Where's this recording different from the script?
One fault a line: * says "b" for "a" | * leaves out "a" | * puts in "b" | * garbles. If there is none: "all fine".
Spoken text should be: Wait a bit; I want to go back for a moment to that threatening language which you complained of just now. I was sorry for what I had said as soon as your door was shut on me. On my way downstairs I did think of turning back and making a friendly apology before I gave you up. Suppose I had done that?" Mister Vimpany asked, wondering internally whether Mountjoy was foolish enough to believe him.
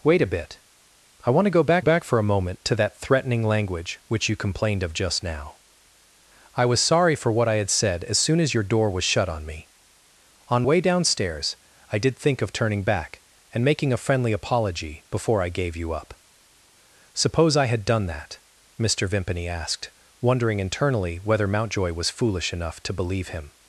* puts in "back"
* leaves out "my"